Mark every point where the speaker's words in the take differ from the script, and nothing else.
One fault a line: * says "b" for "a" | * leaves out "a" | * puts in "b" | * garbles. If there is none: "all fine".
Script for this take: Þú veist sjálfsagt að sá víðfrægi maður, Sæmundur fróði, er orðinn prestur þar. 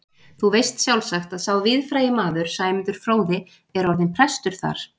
all fine